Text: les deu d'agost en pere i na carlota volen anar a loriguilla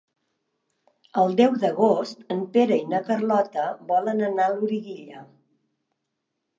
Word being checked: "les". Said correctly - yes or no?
no